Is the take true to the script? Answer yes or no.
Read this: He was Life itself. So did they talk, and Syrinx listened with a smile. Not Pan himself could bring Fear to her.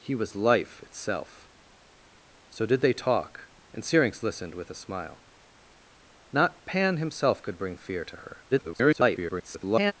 no